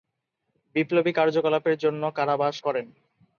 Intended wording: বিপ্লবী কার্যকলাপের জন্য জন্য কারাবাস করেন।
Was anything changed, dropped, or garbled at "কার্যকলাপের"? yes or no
no